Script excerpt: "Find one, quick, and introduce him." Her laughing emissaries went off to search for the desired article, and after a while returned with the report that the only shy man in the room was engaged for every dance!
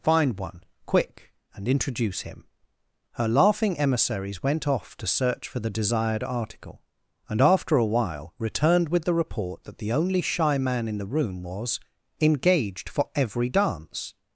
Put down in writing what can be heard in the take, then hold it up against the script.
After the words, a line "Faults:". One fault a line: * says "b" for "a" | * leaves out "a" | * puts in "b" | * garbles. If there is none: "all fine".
"Find one, quick, and introduce him." Her laughing emissaries went off to search for the desired article, and after a while returned with the report that the only shy man in the room was engaged for every dance!
Faults:
all fine